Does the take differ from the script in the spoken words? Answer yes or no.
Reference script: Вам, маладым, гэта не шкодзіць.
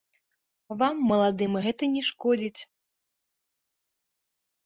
no